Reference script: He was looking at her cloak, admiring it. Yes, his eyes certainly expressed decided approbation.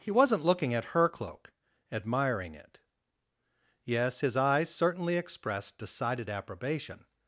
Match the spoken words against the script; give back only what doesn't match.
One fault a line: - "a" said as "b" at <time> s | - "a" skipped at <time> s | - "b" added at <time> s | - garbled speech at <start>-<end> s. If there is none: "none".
- "was" said as "wasn't" at 0.1 s